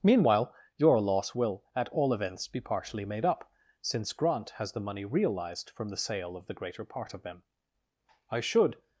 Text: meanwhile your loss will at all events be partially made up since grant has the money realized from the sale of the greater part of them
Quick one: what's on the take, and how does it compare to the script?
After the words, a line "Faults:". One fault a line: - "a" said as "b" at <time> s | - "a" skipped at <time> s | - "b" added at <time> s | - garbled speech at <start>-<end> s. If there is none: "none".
meanwhile your loss will at all events be partially made up since grant has the money realized from the sale of the greater part of them i should
Faults:
- "i should" added at 8.3 s